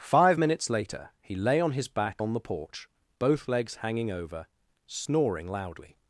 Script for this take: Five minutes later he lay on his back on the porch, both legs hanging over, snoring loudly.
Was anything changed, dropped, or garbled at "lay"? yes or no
no